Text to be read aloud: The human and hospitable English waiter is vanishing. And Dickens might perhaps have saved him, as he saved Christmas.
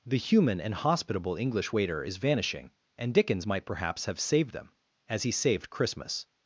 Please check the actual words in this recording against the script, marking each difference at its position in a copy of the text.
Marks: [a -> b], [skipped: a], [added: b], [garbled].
The human and hospitable English waiter is vanishing. And Dickens might perhaps have saved [him, -> them] as he saved Christmas.